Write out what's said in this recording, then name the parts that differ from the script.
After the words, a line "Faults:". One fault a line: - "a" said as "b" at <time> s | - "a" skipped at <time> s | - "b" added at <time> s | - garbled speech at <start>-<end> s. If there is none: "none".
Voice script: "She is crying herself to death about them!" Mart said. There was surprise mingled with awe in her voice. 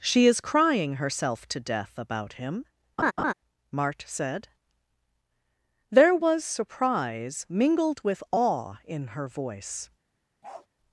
"She is crying herself to death about him!" Mart said. There was surprise mingled with awe in her voice.
Faults:
- "them" said as "him" at 2.3 s